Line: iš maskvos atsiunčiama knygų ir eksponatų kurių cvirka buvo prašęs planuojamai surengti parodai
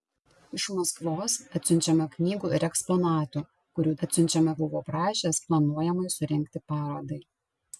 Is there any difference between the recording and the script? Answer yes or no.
yes